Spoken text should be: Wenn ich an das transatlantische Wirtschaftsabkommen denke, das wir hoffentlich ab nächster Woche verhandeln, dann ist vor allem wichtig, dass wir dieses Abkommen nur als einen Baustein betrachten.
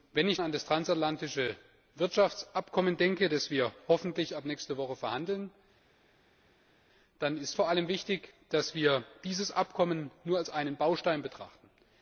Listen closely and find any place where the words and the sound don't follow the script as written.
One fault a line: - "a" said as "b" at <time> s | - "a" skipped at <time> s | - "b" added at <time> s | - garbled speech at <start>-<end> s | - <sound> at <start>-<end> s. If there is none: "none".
none